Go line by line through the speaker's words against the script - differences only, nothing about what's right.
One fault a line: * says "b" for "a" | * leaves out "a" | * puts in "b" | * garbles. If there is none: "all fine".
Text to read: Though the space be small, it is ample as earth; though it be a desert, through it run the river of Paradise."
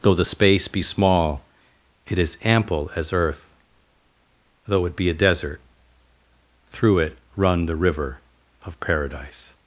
all fine